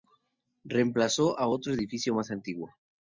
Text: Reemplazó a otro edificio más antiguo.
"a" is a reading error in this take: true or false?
false